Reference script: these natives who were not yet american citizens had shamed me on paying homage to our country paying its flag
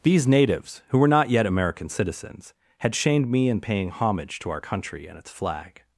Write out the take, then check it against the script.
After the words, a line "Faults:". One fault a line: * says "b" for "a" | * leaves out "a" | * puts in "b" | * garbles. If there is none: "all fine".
these natives who were not yet american citizens had shamed me in paying homage to our country and its flag
Faults:
* says "in" for "on"
* says "and" for "paying"